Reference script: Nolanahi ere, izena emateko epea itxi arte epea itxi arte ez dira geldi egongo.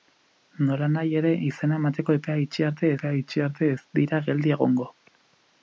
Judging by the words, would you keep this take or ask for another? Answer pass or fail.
pass